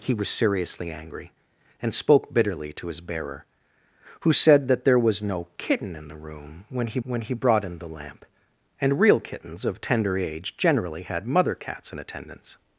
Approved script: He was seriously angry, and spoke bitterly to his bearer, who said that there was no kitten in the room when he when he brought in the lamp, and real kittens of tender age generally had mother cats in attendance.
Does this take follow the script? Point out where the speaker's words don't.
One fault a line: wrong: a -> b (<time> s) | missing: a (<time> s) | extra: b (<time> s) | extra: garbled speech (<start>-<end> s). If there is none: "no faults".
no faults